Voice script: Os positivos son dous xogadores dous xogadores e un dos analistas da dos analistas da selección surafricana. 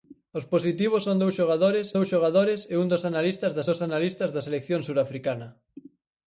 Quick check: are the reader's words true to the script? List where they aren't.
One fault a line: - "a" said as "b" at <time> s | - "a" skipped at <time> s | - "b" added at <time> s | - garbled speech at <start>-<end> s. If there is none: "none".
none